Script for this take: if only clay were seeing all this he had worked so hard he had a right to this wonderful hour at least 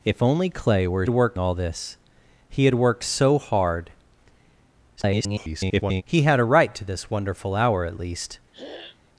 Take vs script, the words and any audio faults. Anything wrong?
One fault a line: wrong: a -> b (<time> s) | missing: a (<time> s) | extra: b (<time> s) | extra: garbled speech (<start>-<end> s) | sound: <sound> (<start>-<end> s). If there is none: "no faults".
wrong: seeing -> worked (1.1 s)
extra: garbled speech (5.0-6.0 s)
sound: throat clearing (8.5-9.0 s)